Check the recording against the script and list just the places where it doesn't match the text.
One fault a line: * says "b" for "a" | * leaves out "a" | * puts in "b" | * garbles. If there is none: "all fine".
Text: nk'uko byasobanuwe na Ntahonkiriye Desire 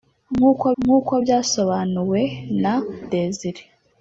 * puts in "nk'uko"
* leaves out "Ntahonkiriye"